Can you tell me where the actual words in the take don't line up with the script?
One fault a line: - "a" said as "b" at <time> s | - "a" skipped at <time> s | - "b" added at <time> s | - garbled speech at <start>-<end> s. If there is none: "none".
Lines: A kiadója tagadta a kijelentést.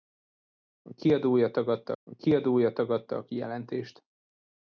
- "kiadója tagadta a" added at 2.1 s